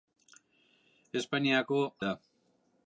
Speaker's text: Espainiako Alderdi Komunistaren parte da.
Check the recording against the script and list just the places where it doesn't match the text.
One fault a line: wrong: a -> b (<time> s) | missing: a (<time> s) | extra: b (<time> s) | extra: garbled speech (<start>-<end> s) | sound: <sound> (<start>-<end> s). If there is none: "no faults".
missing: Alderdi Komunistaren parte (1.8 s)